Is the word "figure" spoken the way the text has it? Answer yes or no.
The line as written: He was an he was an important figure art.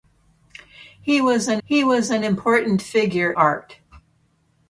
yes